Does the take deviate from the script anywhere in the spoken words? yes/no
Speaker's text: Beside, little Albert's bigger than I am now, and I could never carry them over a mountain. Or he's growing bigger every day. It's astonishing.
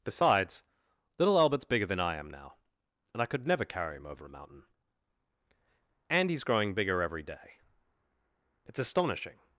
yes